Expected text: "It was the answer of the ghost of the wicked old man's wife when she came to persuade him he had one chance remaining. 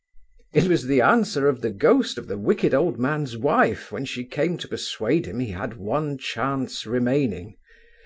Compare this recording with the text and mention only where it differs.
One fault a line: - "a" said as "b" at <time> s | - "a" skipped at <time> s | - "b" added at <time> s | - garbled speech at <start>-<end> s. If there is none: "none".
none